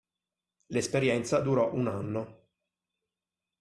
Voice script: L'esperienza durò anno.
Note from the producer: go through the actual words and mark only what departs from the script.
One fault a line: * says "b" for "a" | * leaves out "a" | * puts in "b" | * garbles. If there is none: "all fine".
* puts in "un"